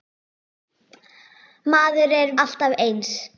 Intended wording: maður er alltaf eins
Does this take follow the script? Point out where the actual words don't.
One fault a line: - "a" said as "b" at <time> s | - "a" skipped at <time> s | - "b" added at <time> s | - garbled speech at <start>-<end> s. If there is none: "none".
none